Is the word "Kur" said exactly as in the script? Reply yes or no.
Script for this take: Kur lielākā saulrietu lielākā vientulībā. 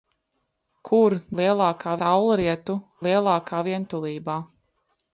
yes